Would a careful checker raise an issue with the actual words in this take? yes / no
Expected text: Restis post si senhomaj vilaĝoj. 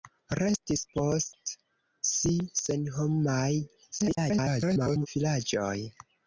yes